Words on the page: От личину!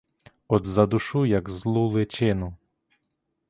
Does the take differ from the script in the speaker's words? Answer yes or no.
yes